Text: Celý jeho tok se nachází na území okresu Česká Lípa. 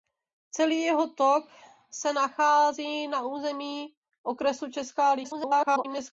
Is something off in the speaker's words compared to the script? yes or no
yes